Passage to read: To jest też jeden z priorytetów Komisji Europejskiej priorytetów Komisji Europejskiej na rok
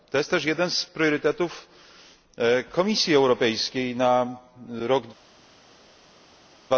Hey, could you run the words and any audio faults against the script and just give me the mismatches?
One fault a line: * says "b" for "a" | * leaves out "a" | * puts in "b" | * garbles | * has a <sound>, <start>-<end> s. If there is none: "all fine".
* leaves out "priorytetów Komisji Europejskiej"